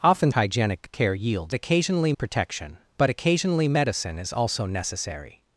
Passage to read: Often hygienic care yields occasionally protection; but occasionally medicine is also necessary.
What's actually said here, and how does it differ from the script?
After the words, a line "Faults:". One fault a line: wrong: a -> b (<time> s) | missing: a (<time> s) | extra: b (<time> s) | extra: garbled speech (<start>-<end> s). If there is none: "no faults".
Often hygienic care yields occasionally protection; but occasionally medicine is also necessary.
Faults:
no faults